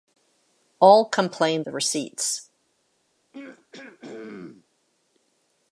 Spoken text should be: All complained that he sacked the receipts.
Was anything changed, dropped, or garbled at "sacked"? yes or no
yes